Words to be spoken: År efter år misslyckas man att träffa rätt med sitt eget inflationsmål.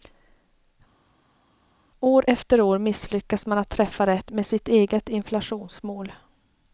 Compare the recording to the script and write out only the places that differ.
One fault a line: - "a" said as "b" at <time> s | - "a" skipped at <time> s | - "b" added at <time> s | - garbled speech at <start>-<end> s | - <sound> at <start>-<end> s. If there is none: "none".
none